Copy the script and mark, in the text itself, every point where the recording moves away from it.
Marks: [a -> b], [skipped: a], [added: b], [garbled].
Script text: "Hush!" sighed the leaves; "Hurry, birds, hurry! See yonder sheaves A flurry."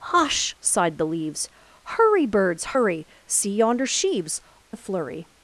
"Hush!" sighed the leaves; "Hurry, birds, hurry! See yonder sheaves A flurry."